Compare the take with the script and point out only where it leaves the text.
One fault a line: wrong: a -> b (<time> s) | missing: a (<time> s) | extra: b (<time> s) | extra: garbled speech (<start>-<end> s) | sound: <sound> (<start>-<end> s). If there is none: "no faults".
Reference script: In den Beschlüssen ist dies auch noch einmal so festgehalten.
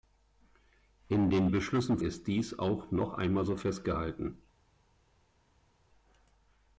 no faults